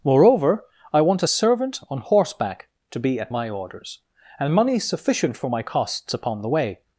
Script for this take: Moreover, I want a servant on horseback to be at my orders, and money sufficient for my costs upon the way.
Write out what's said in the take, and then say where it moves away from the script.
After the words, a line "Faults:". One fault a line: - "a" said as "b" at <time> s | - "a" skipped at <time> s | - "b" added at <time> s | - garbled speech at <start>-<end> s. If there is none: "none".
Moreover, I want a servant on horseback to be at my orders, and money sufficient for my costs upon the way.
Faults:
none